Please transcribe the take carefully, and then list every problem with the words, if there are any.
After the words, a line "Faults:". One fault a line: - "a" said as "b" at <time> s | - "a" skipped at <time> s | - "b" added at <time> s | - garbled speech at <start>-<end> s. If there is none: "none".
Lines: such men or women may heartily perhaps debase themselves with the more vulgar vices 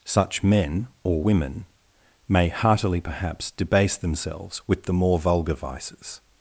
such men or women may heartily perhaps debase themselves with the more vulgar vices
Faults:
none